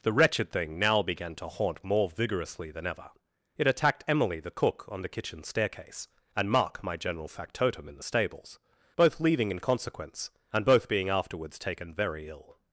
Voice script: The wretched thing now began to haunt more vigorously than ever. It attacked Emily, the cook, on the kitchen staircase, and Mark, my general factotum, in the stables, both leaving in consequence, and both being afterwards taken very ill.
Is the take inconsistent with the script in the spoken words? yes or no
no